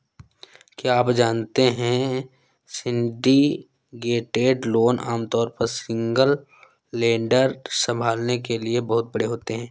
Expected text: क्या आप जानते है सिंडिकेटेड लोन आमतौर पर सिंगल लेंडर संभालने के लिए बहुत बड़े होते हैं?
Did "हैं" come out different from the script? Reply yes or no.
no